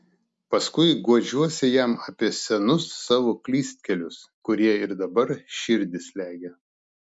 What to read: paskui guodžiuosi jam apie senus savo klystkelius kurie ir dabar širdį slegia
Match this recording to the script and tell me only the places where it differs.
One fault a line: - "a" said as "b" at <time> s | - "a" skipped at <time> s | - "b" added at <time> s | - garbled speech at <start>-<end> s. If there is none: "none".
none